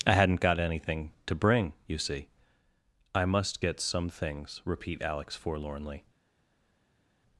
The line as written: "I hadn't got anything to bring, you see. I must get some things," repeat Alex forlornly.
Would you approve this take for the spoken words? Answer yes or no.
yes